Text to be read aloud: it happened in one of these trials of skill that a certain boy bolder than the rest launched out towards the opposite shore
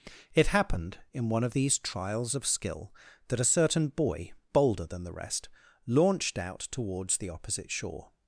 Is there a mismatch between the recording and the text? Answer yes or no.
no